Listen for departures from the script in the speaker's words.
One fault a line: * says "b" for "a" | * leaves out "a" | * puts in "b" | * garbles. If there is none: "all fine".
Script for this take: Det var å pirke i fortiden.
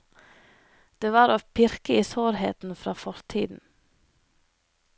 * puts in "sårheten fra"